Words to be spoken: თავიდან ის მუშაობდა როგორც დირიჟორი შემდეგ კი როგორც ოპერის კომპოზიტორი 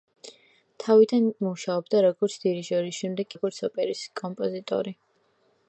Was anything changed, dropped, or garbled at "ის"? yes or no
yes